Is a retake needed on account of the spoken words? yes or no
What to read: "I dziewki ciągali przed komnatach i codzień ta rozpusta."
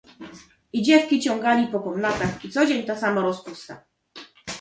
yes